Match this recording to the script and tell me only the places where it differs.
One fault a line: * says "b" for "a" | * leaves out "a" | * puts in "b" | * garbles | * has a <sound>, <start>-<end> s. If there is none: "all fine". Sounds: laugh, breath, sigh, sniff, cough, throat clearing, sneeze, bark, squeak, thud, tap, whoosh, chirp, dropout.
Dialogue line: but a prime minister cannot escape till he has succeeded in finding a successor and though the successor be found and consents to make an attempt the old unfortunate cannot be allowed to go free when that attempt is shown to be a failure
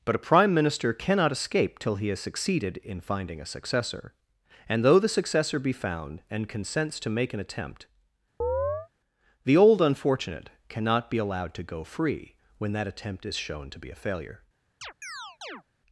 * has a chirp, 8.4-8.9 s
* has a chirp, 14.8-15.6 s